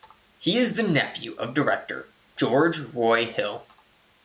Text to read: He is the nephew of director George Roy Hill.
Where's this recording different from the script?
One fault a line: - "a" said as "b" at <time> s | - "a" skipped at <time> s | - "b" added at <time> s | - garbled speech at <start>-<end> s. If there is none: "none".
none